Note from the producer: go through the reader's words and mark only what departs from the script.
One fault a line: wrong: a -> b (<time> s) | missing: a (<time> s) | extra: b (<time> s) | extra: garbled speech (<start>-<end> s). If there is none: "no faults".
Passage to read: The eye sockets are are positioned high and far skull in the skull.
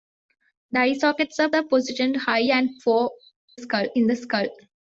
no faults